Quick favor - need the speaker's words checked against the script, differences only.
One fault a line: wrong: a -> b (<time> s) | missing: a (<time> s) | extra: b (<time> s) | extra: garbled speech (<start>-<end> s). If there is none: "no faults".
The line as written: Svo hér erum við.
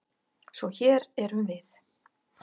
no faults